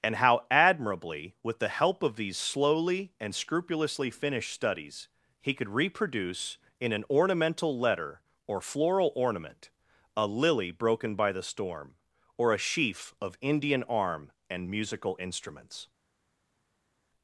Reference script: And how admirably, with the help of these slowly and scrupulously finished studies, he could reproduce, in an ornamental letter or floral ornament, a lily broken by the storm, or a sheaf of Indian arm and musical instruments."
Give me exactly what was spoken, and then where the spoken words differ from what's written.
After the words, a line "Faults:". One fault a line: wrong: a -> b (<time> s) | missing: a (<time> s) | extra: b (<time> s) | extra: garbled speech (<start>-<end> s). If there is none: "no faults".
And how admirably, with the help of these slowly and scrupulously finished studies, he could reproduce, in an ornamental letter or floral ornament, a lily broken by the storm, or a sheaf of Indian arm and musical instruments."
Faults:
no faults